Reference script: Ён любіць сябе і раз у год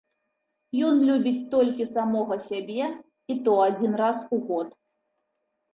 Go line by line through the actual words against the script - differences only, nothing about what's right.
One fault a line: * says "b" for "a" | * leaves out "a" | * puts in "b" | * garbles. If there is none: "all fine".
* puts in "толькі самога"
* puts in "то адзін"